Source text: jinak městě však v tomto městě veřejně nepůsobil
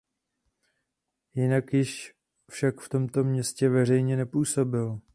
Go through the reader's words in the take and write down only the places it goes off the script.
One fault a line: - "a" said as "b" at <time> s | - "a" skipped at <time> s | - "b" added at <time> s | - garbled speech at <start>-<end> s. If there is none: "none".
- "městě" said as "již" at 1.7 s